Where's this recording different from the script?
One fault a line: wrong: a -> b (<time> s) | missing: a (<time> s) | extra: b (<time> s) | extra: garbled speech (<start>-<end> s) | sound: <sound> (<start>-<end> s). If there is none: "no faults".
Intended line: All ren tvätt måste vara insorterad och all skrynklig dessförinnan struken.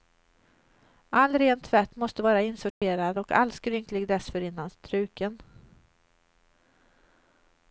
sound: dropout (2.7-2.8 s)